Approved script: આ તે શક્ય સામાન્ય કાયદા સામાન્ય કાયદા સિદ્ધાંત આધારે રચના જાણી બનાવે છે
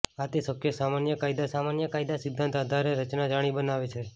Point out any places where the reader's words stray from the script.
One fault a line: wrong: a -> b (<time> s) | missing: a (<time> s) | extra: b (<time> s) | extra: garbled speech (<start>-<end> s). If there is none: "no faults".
no faults